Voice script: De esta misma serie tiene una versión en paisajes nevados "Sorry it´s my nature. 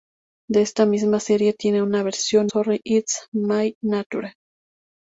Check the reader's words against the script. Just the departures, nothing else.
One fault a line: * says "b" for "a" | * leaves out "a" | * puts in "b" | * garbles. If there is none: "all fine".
* leaves out "en paisajes nevados"